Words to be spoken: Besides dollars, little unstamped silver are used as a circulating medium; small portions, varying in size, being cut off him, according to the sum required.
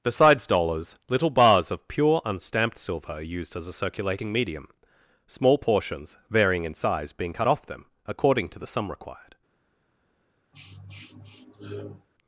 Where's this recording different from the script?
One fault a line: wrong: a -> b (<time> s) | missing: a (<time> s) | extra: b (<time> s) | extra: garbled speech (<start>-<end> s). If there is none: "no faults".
extra: bars of pure (1.3 s)
wrong: him -> them (7.6 s)